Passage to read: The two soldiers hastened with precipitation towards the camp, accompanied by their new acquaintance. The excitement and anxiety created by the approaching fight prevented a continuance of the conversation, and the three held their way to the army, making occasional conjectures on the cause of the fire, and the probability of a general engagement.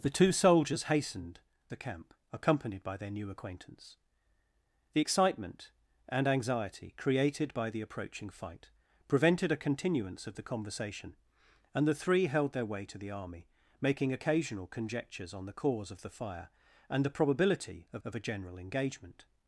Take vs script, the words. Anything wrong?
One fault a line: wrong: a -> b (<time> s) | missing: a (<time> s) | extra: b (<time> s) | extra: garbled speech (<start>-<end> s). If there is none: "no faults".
missing: with precipitation towards (1.4 s)
extra: of (18.1 s)